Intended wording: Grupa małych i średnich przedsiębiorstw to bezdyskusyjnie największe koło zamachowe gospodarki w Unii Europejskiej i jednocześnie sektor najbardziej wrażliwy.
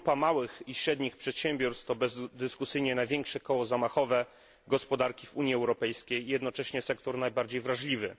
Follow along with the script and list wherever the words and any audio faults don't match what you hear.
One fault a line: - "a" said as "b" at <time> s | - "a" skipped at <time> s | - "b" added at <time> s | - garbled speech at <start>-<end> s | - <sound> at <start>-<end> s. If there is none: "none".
none